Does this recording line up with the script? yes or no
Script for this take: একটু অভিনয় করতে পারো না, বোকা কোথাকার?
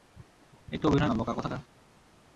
no